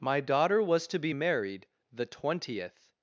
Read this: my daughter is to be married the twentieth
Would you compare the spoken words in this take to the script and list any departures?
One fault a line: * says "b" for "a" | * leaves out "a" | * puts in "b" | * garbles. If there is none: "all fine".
* says "was" for "is"